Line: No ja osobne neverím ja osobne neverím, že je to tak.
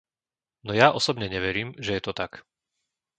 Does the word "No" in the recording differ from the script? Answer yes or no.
no